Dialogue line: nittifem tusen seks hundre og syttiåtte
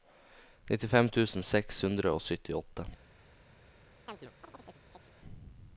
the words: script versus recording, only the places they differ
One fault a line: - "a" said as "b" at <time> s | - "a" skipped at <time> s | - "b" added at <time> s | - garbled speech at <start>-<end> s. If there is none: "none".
none